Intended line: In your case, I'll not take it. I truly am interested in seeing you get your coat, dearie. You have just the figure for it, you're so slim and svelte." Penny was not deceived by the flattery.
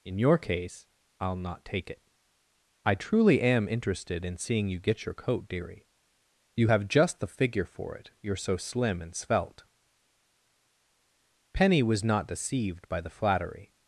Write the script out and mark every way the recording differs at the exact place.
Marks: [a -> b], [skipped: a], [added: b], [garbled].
In your case, I'll not take it. I truly am interested in seeing you get your coat, dearie. You have just the figure for it, you're so slim and svelte." Penny was not deceived by the flattery.